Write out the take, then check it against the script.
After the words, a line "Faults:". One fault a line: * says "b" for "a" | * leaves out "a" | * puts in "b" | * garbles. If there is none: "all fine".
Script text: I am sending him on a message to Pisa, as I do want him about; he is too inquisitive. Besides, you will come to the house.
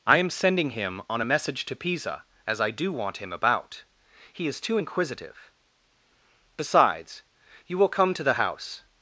I am sending him on a message to Pisa, as I do want him about; he is too inquisitive. Besides, you will come to the house.
Faults:
all fine